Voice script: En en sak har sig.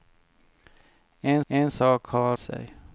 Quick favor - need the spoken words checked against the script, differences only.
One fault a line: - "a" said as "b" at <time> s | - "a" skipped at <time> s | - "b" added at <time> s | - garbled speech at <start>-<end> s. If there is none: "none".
none